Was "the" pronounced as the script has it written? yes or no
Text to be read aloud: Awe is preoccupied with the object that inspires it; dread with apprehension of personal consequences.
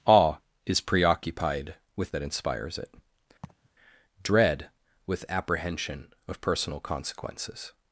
no